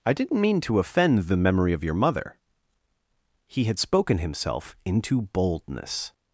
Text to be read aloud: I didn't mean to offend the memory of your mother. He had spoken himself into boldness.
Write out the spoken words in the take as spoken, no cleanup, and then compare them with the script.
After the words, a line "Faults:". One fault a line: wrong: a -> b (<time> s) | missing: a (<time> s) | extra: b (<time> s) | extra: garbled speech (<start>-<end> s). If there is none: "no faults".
I didn't mean to offend the memory of your mother. He had spoken himself into boldness.
Faults:
no faults